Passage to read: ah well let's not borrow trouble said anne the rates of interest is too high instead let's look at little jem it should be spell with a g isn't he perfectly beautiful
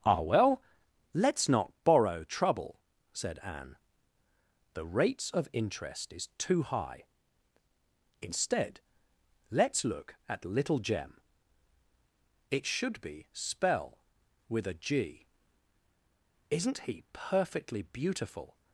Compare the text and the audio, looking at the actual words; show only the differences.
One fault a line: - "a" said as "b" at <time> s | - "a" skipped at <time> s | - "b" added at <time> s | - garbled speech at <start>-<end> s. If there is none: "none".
none